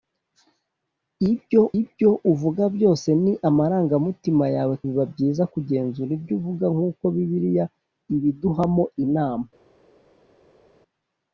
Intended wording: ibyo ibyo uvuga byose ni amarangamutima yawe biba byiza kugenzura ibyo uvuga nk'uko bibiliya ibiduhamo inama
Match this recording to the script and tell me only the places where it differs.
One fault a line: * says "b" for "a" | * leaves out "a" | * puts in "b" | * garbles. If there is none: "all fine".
all fine